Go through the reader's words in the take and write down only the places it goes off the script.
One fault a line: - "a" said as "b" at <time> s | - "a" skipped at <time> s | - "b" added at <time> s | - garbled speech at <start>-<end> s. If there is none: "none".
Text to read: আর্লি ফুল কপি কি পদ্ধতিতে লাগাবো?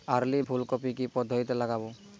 none